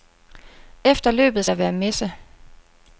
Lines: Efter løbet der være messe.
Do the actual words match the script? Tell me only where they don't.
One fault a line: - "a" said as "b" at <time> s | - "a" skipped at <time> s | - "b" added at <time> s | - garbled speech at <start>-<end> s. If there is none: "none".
none